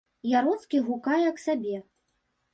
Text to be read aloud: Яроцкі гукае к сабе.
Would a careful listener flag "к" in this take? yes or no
no